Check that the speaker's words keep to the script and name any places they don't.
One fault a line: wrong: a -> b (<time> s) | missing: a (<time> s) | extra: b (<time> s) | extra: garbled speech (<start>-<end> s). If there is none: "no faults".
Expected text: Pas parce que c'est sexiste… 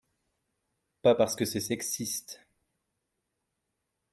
no faults